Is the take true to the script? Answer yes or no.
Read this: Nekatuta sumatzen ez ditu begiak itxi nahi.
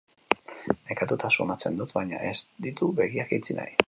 no